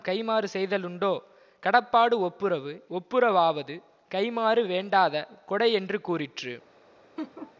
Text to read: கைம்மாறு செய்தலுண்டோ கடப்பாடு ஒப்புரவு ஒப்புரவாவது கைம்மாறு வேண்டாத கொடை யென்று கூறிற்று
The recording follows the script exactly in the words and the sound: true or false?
false